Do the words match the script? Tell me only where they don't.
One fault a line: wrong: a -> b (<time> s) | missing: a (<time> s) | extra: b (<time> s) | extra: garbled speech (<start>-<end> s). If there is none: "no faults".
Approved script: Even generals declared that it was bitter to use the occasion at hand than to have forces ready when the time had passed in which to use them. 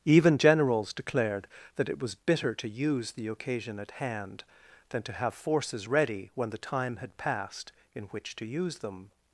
no faults